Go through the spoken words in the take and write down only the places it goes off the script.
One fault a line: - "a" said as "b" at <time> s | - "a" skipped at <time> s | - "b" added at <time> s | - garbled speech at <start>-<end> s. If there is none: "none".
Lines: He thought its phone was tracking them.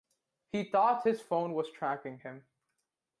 - "its" said as "his" at 1.0 s
- "them" said as "him" at 2.2 s